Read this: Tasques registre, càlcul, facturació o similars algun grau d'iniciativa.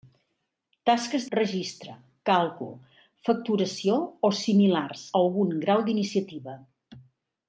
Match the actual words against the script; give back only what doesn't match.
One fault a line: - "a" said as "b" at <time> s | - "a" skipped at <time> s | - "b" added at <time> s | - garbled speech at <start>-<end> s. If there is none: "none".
none